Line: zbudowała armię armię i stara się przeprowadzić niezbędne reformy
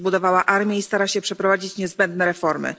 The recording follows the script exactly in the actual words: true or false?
false